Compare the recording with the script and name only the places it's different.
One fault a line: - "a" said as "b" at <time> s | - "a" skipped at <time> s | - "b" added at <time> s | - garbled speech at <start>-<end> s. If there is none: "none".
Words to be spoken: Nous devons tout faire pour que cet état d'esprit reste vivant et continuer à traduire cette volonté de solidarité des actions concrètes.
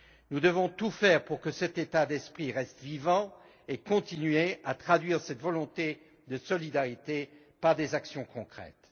- "par" added at 7.6 s